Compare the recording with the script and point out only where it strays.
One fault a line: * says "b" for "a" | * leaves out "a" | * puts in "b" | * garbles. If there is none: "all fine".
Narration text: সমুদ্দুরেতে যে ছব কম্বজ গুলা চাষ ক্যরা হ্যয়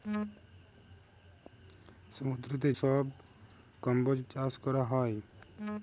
* leaves out "যে"
* leaves out "গুলা"